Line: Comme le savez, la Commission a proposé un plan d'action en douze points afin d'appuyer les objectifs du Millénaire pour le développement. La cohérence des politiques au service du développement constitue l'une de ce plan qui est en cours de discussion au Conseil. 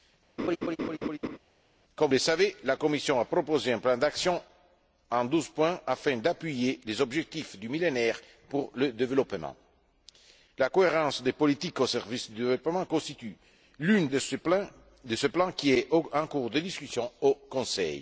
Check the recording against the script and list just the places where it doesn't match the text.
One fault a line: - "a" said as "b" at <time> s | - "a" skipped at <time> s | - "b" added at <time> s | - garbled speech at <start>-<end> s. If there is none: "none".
none